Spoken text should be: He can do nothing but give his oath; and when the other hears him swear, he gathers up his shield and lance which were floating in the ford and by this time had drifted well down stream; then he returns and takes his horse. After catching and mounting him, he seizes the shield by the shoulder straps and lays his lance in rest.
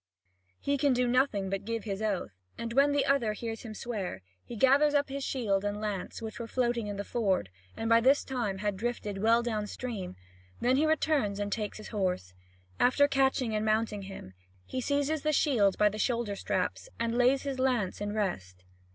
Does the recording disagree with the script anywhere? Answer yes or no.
no